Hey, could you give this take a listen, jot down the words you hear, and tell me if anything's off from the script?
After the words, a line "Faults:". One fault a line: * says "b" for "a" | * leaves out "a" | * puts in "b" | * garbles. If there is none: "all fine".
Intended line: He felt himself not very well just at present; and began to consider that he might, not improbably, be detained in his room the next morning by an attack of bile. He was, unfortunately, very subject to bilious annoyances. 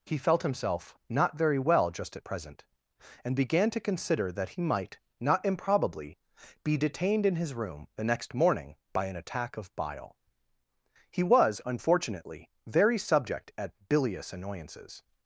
He felt himself not very well just at present; and began to consider that he might, not improbably, be detained in his room the next morning by an attack of bile. He was, unfortunately, very subject at bilious annoyances.
Faults:
* says "at" for "to"